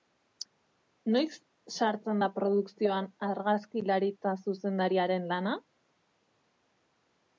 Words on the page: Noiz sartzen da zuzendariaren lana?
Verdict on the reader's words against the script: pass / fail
fail